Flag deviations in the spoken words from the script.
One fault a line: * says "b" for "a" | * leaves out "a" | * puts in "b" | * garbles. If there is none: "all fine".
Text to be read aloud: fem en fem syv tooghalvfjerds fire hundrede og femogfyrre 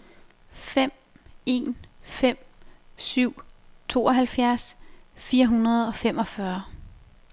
all fine